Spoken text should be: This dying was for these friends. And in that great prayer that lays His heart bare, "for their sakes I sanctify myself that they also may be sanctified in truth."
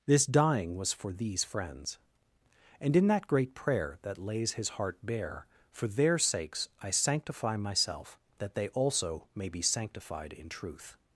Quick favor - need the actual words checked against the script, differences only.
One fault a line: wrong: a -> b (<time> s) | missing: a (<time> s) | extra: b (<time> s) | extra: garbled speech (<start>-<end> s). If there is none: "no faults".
no faults